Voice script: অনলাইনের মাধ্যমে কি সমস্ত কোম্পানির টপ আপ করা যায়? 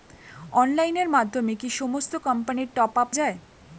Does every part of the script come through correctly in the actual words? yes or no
no